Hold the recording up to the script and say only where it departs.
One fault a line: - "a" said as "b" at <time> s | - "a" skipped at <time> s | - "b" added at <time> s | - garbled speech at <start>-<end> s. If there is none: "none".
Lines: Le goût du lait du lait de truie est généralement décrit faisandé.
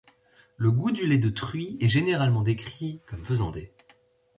- "du lait" skipped at 1.2 s
- "comme" added at 3.0 s